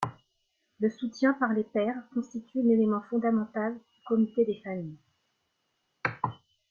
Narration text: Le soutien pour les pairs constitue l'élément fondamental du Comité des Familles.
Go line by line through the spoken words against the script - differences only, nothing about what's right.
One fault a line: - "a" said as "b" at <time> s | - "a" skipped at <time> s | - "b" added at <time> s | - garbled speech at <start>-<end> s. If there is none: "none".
- "pour" said as "par" at 1.3 s